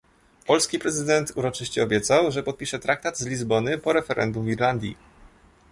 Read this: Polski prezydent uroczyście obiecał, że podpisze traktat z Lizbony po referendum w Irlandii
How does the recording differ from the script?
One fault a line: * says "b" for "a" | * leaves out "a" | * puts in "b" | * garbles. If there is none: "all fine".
all fine